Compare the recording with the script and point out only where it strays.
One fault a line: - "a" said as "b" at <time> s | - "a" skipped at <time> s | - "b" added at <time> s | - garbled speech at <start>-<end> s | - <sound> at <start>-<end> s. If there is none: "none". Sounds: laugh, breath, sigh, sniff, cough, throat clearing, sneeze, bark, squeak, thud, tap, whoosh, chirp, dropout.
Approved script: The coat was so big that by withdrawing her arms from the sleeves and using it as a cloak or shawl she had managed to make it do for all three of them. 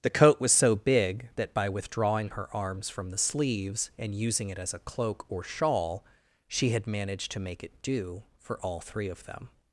none